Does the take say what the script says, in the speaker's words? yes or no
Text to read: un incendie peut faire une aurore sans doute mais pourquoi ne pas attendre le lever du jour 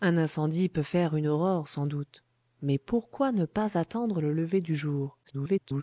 no